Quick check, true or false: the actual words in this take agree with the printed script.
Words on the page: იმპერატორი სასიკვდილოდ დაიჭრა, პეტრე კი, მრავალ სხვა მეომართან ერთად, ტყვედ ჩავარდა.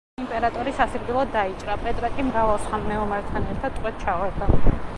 true